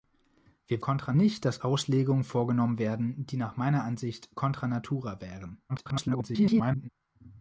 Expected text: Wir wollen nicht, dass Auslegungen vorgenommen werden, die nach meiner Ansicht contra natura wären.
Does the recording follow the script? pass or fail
fail